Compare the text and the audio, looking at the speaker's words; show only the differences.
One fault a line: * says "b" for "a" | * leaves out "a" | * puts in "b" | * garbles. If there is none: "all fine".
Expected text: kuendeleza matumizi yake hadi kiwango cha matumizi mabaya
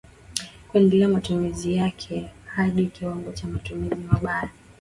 all fine